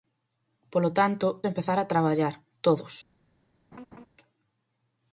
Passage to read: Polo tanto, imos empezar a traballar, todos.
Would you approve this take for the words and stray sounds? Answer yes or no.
no